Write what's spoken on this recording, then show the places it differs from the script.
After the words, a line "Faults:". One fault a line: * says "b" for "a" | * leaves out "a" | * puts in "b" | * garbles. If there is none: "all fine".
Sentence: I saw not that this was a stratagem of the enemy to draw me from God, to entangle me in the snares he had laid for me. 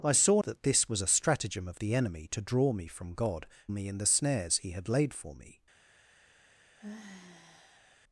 I saw that this was a stratagem of the enemy to draw me from God, me in the snares he had laid for me.
Faults:
* leaves out "not"
* leaves out "to entangle"